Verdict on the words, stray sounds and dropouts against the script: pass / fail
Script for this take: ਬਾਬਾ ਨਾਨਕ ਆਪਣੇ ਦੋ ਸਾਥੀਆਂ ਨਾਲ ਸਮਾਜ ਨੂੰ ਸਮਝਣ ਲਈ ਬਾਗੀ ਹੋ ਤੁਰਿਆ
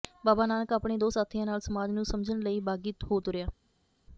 pass